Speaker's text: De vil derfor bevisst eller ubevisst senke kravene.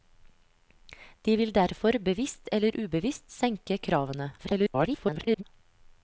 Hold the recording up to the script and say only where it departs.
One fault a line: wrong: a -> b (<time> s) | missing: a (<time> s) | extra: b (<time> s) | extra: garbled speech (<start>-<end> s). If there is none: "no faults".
extra: garbled speech (4.4-5.4 s)